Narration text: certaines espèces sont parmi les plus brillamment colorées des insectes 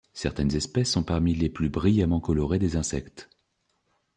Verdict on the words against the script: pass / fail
pass